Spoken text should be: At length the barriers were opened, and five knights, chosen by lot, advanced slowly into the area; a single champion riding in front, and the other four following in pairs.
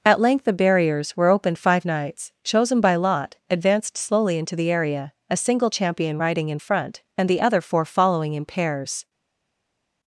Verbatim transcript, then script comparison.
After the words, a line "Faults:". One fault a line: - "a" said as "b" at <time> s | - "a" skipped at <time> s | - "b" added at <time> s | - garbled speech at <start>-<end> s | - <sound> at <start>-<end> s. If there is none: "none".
At length the barriers were opened, five knights, chosen by lot, advanced slowly into the area; a single champion riding in front, and the other four following in pairs.
Faults:
- "and" skipped at 1.6 s